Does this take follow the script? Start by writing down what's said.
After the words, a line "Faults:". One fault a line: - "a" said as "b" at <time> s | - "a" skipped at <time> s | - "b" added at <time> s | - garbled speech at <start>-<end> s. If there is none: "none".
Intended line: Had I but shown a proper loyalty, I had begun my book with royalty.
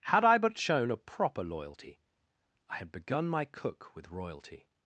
Had I but shown a proper loyalty, I had begun my cook with royalty.
Faults:
- "book" said as "cook" at 3.5 s